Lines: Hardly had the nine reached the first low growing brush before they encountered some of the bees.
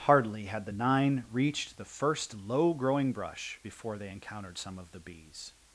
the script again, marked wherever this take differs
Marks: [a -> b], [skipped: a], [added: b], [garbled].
Hardly had the nine reached the first low growing brush before they encountered some of the bees.